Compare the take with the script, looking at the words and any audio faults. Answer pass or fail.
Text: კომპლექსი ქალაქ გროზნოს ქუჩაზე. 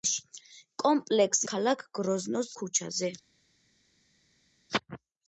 pass